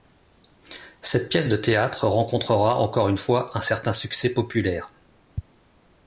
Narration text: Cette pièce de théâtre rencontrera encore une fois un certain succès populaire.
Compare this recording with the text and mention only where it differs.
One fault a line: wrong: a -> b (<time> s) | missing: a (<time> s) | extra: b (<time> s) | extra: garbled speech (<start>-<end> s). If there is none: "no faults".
no faults